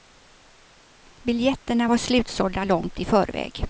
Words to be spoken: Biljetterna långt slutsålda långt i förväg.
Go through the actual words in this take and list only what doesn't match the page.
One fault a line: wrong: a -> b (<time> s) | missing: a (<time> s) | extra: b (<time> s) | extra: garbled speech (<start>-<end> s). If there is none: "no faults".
wrong: långt -> var (1.9 s)